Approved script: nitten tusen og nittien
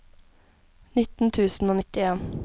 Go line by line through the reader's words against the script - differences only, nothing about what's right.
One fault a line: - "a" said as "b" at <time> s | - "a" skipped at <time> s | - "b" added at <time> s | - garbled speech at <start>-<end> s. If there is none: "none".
none